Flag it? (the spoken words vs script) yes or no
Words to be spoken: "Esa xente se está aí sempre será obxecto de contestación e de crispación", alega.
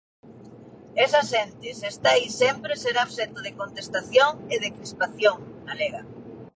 no